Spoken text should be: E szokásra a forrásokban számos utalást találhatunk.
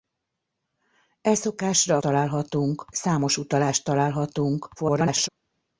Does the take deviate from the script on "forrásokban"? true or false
true